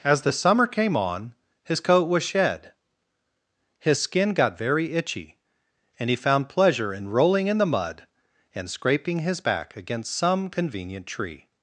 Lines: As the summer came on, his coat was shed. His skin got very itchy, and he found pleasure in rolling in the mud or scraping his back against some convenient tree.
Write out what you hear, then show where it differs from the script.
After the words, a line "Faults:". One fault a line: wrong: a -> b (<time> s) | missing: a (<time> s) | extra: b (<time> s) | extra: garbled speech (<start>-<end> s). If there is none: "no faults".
As the summer came on, his coat was shed. His skin got very itchy, and he found pleasure in rolling in the mud and scraping his back against some convenient tree.
Faults:
wrong: or -> and (8.5 s)